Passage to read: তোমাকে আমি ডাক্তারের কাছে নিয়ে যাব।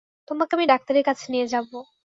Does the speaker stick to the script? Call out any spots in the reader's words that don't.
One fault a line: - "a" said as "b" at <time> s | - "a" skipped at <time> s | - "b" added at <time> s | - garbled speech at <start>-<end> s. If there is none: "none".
none